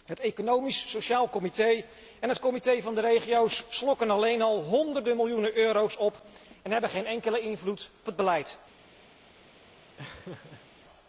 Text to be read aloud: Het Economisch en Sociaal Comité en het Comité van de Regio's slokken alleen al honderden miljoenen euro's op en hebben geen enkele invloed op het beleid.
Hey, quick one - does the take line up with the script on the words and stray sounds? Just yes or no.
no